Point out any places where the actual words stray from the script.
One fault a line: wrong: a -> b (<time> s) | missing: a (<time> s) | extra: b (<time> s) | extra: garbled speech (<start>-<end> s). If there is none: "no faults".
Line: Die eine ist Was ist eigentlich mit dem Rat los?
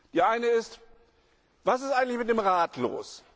no faults